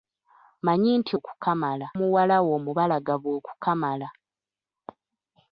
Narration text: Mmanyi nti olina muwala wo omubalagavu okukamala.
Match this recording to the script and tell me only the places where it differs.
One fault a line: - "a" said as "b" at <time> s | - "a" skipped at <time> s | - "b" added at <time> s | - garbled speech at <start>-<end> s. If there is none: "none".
- "olina" said as "okukamala" at 1.2 s